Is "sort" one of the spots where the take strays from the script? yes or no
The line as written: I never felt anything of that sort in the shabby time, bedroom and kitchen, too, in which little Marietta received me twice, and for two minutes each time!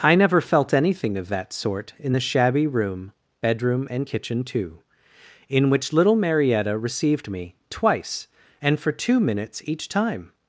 no